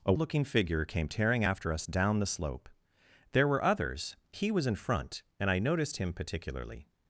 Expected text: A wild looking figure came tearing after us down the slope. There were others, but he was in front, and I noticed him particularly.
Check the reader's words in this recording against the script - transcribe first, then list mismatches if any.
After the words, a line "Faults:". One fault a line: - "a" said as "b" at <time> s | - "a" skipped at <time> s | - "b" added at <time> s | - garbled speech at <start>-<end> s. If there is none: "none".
A looking figure came tearing after us down the slope. There were others, he was in front, and I noticed him particularly.
Faults:
- "wild" skipped at 0.1 s
- "but" skipped at 4.2 s